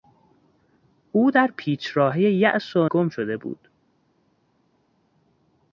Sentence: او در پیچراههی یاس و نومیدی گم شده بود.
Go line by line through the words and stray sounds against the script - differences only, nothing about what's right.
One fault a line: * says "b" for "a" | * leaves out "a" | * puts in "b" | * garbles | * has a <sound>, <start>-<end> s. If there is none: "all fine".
* leaves out "نومیدی"